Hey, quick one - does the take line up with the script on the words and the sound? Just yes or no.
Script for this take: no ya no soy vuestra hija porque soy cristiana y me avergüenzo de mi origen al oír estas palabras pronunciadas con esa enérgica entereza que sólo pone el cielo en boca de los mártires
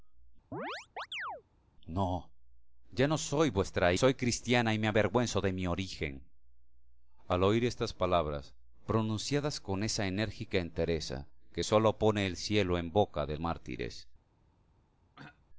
no